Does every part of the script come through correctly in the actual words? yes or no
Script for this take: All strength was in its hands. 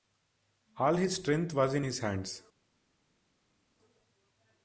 no